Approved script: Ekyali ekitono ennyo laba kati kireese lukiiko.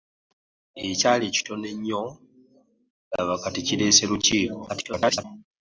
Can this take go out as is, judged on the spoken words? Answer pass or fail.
fail